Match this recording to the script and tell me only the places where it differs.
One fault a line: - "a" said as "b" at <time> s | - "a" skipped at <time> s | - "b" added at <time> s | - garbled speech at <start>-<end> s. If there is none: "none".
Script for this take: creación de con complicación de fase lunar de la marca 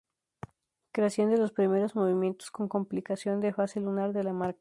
- "los primeros movimientos" added at 1.4 s